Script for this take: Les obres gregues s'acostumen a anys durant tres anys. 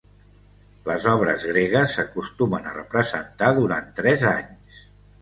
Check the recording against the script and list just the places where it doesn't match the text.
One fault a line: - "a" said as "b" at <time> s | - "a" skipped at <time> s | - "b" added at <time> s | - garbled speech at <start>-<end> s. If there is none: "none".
- "anys" said as "representar" at 2.8 s